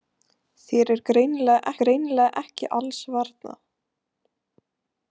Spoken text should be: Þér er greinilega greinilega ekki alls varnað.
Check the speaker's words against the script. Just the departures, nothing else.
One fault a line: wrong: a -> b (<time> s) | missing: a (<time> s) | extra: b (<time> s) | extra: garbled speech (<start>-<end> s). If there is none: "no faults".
no faults